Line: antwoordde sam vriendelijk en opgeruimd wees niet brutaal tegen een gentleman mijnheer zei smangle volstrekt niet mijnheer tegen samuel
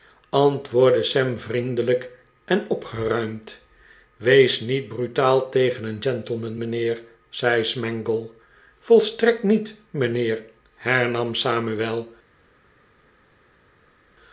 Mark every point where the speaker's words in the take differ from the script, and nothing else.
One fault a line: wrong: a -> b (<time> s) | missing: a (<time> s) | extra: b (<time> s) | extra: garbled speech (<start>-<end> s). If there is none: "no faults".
wrong: tegen -> hernam (10.7 s)